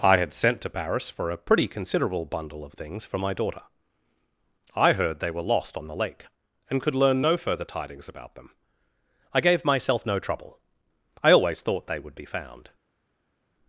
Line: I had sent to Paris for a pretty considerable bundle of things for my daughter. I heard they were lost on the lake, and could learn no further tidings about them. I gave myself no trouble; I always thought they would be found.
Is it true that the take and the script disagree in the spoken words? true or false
false